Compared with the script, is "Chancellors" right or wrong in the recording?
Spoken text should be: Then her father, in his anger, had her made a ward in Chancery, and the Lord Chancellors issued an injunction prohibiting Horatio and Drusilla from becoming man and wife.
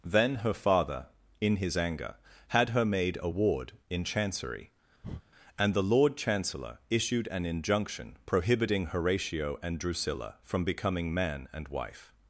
wrong